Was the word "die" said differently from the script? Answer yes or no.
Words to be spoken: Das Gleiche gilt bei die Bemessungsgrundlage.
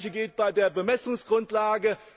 yes